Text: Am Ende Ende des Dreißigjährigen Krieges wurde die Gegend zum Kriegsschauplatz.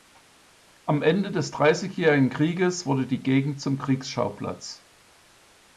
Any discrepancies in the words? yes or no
yes